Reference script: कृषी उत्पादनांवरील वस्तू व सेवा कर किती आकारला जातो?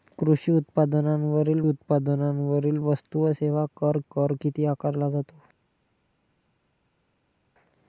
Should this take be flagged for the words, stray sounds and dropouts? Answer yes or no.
yes